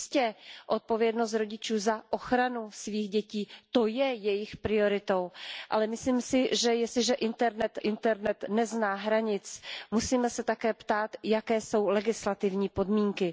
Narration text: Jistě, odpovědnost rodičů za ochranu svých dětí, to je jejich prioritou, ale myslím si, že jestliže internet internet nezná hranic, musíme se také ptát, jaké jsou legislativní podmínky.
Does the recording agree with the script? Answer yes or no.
yes